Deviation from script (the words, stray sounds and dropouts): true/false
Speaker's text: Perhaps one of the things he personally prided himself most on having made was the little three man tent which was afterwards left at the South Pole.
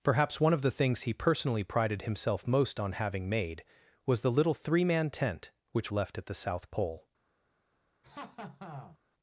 true